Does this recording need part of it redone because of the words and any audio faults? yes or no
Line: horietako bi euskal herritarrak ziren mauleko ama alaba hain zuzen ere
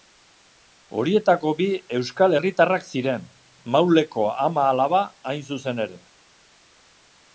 no